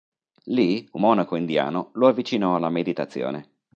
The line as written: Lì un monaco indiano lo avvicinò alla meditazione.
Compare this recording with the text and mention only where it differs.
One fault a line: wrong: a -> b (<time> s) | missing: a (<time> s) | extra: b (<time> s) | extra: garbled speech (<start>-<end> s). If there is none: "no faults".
no faults